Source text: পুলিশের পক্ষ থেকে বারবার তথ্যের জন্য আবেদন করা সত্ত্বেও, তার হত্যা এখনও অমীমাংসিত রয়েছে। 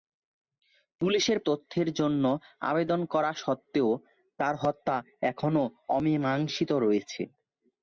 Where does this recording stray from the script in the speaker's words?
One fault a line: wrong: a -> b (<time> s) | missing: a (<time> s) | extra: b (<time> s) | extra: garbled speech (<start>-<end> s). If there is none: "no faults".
missing: পক্ষ থেকে বারবার (1.4 s)